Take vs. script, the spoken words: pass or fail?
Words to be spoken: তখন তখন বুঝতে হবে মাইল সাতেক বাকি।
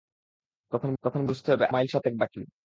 pass